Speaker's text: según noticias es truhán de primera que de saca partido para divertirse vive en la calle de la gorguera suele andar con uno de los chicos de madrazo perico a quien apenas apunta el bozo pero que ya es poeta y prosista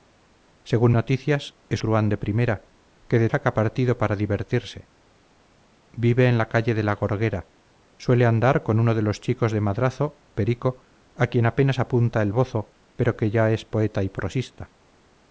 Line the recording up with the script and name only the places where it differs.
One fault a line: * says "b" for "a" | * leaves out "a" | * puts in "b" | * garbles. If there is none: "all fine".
all fine